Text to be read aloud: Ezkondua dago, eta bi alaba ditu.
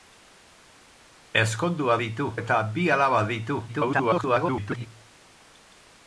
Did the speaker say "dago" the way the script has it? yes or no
no